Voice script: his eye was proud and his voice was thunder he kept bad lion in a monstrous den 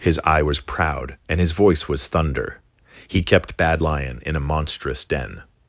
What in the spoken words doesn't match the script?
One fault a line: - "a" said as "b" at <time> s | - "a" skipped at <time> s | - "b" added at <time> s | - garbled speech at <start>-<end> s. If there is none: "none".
none